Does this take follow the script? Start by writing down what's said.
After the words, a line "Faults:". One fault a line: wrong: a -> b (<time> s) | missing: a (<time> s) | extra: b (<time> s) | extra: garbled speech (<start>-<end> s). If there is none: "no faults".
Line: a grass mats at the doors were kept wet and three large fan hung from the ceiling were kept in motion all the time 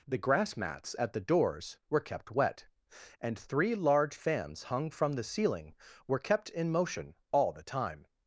the grass mats at the doors were kept wet and three large fans hung from the ceiling were kept in motion all the time
Faults:
wrong: a -> the (0.1 s)
wrong: fan -> fans (4.2 s)